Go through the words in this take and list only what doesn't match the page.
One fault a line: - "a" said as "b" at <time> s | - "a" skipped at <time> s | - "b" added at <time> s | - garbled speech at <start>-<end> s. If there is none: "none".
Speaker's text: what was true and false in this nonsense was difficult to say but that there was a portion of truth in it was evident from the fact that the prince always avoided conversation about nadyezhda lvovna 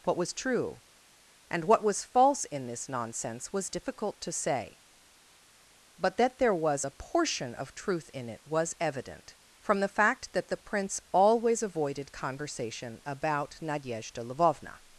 - "what was" added at 1.6 s